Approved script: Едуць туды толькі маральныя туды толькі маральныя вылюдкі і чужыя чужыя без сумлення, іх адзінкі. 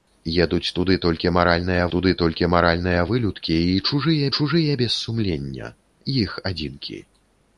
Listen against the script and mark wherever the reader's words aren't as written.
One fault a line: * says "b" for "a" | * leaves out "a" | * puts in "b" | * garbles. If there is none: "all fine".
all fine